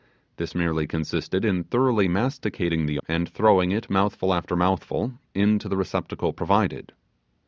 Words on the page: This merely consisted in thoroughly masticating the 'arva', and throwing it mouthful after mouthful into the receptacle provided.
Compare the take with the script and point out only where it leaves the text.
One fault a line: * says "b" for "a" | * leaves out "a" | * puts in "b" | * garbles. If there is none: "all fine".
* leaves out "arva"